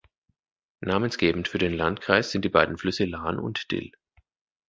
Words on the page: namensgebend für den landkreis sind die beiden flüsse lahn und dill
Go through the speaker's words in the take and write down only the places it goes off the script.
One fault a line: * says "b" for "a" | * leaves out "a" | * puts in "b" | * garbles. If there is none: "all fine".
all fine